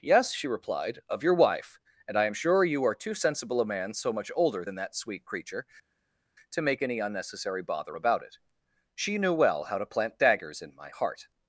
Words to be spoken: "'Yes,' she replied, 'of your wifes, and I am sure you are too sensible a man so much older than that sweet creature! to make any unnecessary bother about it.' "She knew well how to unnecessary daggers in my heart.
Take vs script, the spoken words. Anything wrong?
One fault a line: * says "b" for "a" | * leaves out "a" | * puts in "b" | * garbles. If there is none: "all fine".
* says "wife" for "wifes"
* says "plant" for "unnecessary"